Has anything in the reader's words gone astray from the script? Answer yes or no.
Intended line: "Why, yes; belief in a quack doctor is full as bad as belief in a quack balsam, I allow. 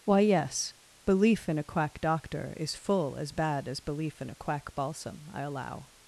no